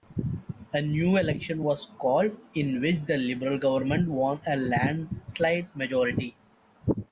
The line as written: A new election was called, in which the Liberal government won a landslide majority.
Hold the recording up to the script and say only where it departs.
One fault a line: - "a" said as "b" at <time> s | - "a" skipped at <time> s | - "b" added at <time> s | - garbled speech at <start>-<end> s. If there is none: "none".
none